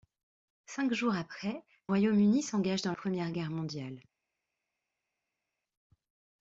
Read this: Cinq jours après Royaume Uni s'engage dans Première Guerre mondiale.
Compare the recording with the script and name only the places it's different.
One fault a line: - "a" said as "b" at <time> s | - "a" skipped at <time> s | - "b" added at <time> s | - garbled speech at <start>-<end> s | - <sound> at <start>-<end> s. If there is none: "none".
none